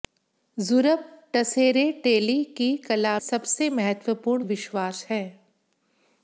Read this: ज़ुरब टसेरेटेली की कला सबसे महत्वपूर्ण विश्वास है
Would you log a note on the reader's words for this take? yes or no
no